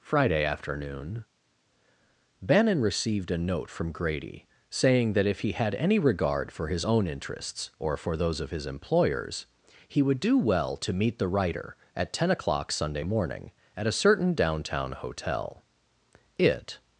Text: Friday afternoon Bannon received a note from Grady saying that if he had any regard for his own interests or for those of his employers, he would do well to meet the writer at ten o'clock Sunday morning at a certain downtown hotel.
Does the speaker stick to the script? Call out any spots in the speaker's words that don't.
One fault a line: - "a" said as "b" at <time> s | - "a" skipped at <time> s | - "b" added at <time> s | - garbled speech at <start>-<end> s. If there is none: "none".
- "It" added at 16.4 s